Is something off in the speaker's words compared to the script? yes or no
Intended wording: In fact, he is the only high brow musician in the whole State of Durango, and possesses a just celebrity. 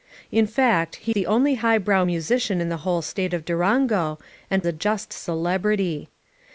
yes